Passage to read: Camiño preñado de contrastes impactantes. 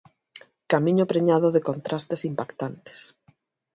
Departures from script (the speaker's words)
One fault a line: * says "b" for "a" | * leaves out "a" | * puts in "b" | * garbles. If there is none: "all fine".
all fine